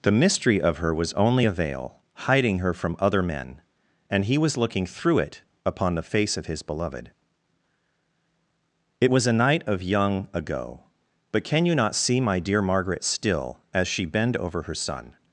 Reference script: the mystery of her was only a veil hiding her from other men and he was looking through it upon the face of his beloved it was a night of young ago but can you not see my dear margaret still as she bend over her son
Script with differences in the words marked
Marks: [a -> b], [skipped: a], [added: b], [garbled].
the mystery of her was only a veil hiding her from other men and he was looking through it upon the face of his beloved it was a night of young ago but can you not see my dear margaret still as she bend over her son